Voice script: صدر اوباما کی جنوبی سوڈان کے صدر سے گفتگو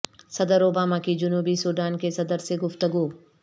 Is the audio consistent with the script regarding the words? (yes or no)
yes